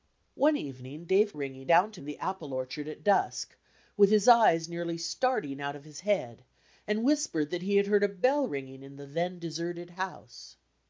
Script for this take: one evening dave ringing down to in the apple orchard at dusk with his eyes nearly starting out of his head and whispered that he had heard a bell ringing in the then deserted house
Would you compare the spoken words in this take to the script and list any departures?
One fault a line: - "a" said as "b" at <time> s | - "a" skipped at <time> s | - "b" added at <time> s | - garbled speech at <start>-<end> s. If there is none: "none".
none